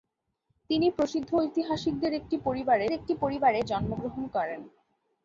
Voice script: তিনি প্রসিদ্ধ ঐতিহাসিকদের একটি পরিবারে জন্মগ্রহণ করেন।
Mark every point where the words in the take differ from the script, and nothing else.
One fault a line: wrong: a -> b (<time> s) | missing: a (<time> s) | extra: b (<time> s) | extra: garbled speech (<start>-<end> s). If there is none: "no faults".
extra: একটি পরিবারে (2.9 s)